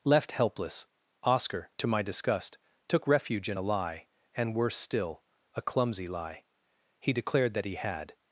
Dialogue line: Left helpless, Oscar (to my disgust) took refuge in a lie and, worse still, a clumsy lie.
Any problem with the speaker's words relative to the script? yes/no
yes